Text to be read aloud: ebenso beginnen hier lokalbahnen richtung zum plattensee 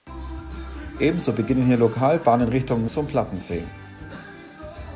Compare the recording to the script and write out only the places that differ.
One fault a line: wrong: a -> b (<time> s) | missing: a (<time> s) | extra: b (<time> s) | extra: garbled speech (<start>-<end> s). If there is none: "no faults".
no faults